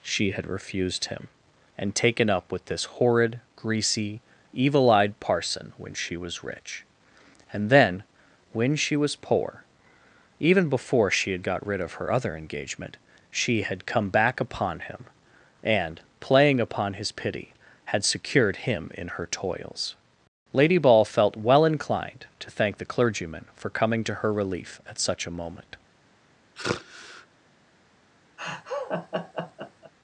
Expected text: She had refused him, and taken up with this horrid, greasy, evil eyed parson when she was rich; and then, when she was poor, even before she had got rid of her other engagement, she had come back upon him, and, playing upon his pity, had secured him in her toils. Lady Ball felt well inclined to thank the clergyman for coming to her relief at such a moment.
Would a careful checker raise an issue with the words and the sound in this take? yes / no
yes